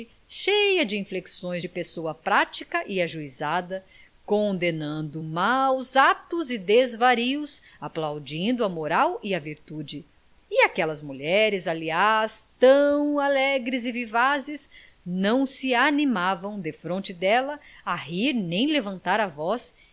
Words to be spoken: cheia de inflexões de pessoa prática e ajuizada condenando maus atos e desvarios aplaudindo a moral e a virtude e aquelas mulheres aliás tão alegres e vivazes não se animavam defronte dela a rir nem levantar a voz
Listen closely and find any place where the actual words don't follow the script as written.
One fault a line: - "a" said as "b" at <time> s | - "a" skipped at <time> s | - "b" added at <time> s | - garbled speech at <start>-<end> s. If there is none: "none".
none